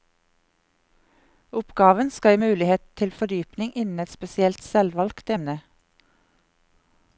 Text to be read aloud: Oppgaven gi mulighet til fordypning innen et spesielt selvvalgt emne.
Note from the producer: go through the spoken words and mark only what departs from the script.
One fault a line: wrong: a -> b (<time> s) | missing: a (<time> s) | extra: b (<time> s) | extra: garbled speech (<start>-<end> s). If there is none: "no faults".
extra: skal (2.1 s)